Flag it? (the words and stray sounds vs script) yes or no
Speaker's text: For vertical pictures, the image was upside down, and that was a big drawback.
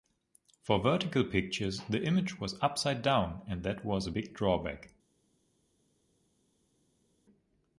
no